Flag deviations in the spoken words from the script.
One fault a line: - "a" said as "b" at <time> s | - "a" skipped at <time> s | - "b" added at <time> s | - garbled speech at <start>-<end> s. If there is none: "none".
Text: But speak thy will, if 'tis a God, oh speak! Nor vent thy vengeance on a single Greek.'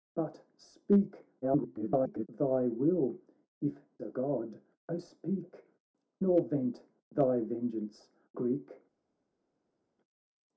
- garbled speech at 1.4-2.3 s
- "tis" skipped at 3.8 s
- "on a single" skipped at 8.1 s